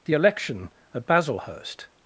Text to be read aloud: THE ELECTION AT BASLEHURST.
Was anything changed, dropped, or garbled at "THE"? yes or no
no